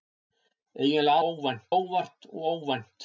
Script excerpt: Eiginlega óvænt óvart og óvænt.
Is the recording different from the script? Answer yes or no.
no